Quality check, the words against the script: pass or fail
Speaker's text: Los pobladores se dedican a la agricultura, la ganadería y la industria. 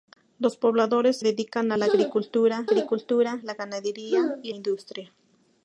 fail